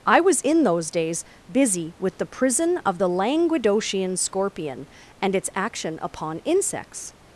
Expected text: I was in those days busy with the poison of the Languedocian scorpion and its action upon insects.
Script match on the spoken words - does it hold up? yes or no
no